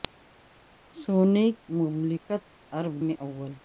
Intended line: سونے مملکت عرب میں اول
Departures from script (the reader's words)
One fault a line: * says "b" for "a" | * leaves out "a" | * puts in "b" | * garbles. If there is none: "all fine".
all fine